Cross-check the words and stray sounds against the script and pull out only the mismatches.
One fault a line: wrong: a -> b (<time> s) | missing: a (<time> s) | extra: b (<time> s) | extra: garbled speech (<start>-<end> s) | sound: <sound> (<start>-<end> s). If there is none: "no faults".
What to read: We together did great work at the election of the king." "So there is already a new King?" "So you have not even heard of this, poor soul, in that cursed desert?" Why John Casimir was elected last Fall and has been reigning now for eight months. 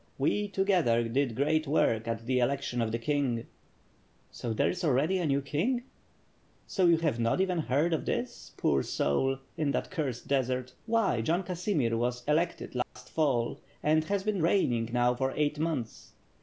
sound: dropout (12.8-13.0 s)